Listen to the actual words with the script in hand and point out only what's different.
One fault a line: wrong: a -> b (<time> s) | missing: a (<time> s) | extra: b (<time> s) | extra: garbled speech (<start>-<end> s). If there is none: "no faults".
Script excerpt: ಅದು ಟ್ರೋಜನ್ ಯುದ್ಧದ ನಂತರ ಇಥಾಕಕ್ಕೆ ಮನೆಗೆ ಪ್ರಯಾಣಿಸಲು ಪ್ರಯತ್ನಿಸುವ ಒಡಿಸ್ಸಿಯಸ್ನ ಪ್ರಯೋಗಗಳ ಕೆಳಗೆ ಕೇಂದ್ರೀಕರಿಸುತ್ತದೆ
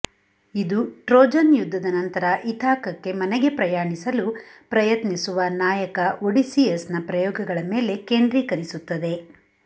wrong: ಅದು -> ಇದು (0.6 s)
extra: ನಾಯಕ (5.6 s)
wrong: ಕೆಳಗೆ -> ಮೇಲೆ (7.7 s)